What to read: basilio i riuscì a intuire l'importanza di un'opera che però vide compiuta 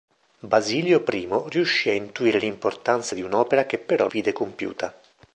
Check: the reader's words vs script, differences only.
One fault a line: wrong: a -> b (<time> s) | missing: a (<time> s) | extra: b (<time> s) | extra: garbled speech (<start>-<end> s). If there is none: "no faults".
no faults